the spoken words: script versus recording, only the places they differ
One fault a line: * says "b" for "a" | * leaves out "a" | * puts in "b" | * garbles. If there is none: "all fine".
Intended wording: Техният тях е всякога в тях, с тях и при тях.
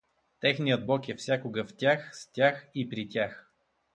* says "бог" for "тях"